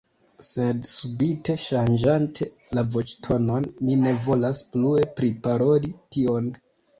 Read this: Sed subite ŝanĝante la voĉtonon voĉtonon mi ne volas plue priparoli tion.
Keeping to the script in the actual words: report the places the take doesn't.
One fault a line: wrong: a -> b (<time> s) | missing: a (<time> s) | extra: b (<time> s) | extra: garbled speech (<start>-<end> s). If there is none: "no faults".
missing: voĉtonon (3.7 s)